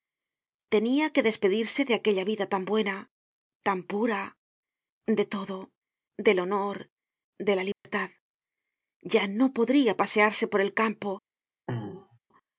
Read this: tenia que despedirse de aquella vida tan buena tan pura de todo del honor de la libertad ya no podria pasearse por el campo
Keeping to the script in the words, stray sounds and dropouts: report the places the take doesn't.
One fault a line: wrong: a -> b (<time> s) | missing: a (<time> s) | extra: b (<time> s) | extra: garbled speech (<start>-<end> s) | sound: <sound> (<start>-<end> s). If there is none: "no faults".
sound: dropout (7.7-7.8 s)
sound: throat clearing (11.7-12.2 s)